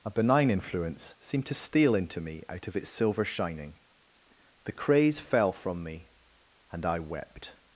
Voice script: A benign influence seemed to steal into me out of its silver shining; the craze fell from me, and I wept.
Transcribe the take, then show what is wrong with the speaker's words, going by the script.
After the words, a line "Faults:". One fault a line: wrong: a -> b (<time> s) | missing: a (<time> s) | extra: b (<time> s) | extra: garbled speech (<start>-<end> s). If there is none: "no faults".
A benign influence seemed to steal into me out of its silver shining; the craze fell from me, and I wept.
Faults:
no faults